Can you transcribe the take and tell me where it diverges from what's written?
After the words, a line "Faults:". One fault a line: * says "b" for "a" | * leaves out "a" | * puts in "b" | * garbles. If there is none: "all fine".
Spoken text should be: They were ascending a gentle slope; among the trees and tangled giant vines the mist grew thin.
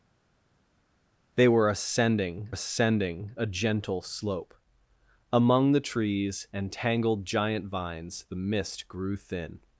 They were ascending ascending a gentle slope; among the trees and tangled giant vines the mist grew thin.
Faults:
* puts in "ascending"